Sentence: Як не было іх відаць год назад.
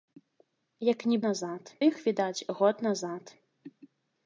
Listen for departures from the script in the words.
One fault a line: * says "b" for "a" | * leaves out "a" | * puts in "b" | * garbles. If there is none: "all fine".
* says "назад" for "было"